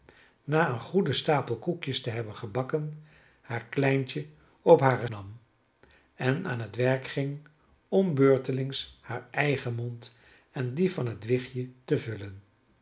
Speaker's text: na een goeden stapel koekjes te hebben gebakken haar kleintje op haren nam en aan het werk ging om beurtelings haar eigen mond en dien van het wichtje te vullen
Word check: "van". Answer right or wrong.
right